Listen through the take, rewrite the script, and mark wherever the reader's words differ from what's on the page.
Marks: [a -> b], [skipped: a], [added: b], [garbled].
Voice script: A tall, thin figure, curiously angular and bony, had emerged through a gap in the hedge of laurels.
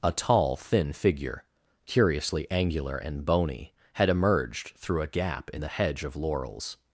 A tall, thin figure, curiously angular and bony, had emerged through a gap in the hedge of laurels.